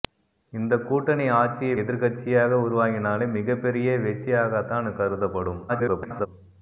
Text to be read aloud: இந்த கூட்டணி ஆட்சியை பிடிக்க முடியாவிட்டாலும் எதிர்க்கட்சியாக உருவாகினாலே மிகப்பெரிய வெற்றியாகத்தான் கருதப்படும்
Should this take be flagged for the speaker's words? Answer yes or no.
yes